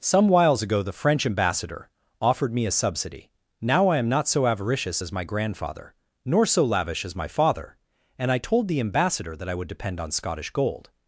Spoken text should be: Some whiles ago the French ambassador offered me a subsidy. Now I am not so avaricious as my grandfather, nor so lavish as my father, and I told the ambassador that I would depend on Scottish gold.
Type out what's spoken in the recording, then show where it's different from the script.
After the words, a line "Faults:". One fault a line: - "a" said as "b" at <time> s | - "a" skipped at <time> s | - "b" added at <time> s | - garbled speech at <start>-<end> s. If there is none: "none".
Some whiles ago the French ambassador offered me a subsidy. Now I am not so avaricious as my grandfather, nor so lavish as my father, and I told the ambassador that I would depend on Scottish gold.
Faults:
none